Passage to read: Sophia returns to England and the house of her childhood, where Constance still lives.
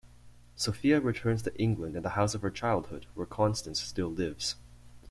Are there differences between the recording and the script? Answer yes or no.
no